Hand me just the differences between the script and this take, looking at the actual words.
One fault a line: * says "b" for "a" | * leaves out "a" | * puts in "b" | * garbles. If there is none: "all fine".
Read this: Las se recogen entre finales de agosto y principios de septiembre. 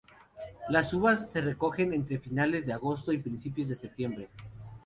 * puts in "uvas"